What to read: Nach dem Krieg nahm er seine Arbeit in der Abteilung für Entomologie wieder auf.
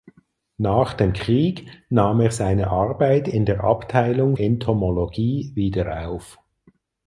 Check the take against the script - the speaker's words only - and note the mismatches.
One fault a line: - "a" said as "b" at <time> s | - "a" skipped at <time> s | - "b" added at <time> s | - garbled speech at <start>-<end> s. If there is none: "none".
- "für" skipped at 4.3 s